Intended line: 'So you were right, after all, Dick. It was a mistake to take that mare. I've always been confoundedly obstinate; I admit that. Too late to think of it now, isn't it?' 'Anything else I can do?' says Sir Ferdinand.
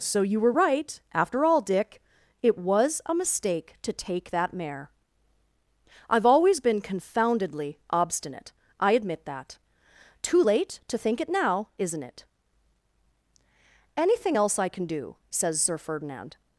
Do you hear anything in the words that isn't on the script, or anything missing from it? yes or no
yes